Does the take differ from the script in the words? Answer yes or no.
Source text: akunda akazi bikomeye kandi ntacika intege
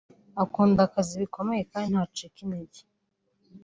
no